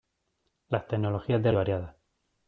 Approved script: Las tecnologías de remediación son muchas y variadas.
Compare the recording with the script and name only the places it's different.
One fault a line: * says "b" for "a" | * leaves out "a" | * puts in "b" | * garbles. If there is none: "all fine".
* leaves out "remediación son muchas"